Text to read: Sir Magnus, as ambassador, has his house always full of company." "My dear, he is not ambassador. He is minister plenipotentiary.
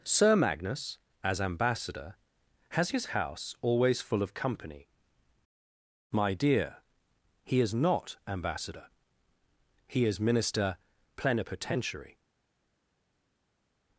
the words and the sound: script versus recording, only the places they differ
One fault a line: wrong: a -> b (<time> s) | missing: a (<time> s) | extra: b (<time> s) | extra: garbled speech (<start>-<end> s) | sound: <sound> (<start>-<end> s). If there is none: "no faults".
no faults